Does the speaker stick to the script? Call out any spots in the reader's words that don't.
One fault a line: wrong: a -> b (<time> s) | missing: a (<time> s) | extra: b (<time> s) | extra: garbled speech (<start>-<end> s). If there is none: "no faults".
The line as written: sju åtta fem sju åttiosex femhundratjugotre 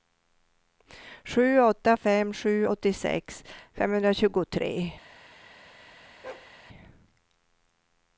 no faults